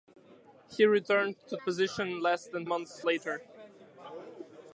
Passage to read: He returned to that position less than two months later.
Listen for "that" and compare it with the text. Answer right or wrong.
wrong